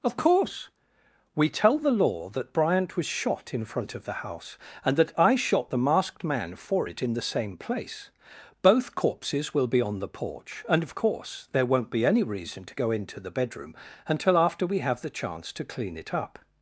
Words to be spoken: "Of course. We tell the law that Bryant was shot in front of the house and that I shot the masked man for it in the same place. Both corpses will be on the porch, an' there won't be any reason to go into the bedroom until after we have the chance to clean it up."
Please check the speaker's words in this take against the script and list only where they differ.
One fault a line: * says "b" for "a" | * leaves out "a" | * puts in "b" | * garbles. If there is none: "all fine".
* says "and of course" for "an"